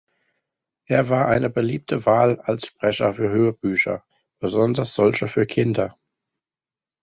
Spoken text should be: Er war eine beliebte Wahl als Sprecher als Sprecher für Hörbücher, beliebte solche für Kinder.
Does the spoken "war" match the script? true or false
true